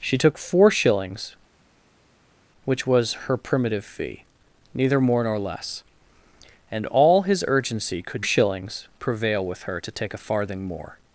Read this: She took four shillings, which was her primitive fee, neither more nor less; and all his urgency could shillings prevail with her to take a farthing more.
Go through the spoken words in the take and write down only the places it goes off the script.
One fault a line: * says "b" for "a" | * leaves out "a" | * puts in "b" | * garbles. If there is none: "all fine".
all fine